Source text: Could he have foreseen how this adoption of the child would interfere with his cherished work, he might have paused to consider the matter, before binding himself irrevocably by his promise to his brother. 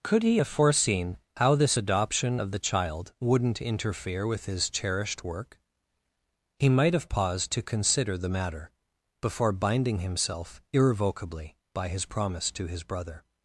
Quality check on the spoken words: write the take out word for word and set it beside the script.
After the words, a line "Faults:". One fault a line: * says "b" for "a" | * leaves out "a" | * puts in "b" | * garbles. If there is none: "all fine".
Could he have foreseen how this adoption of the child wouldn't interfere with his cherished work, he might have paused to consider the matter, before binding himself irrevocably by his promise to his brother.
Faults:
* says "wouldn't" for "would"